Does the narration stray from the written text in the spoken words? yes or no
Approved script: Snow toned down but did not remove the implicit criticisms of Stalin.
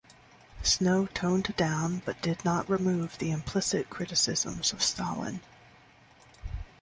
no